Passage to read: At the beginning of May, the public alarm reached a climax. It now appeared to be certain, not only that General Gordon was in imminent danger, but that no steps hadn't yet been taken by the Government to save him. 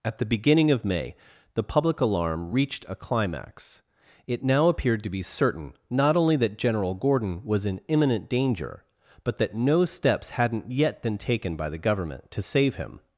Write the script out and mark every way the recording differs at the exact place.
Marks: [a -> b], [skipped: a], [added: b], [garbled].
At the beginning of May, the public alarm reached a climax. It now appeared to be certain, not only that General Gordon was in imminent danger, but that no steps hadn't yet been taken by the Government to save him.